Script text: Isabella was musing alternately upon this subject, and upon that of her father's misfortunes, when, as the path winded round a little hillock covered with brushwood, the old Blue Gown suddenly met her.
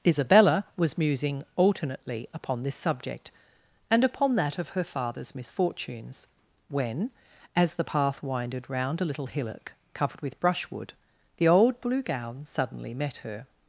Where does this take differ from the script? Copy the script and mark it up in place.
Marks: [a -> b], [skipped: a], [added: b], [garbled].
Isabella was musing alternately upon this subject, and upon that of her father's misfortunes, when, as the path winded round a little hillock covered with brushwood, the old Blue Gown suddenly met her.